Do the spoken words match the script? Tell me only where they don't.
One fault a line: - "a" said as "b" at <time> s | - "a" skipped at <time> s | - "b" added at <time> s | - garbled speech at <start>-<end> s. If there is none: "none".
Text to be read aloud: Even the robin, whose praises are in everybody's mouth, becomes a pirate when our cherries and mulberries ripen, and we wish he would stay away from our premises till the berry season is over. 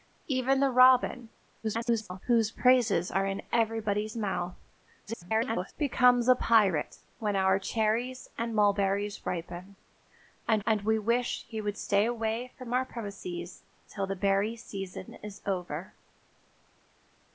- garbled speech at 1.6-2.2 s
- garbled speech at 5.1-5.7 s
- "and" added at 10.6 s